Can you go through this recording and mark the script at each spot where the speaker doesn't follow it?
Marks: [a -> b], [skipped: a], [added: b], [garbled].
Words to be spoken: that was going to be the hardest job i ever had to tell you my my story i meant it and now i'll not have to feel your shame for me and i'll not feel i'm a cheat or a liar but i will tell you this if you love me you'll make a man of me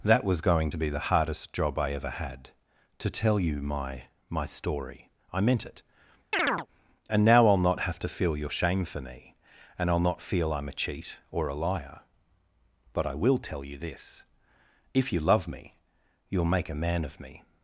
that was going to be the hardest job i ever had to tell you my my story i meant it and now i'll not have to feel your shame for me and i'll not feel i'm a cheat or a liar but i will tell you this if you love me you'll make a man of me